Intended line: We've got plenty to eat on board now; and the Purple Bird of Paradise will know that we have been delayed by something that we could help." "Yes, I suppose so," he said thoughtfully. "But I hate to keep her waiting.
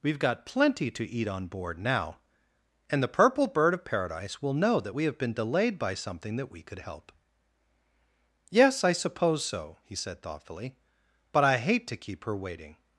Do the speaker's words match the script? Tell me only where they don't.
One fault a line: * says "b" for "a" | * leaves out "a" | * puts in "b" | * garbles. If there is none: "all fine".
all fine